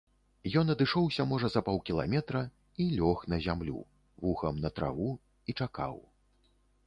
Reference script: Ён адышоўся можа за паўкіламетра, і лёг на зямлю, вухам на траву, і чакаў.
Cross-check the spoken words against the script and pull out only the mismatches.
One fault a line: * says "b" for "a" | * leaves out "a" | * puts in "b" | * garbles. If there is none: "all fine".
all fine